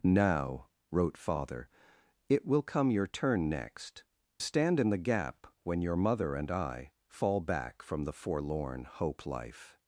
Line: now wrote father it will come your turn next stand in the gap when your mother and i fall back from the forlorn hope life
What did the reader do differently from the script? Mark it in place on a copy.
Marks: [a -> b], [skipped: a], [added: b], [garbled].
now wrote father it will come your turn next stand in the gap when your mother and i fall back from the forlorn hope life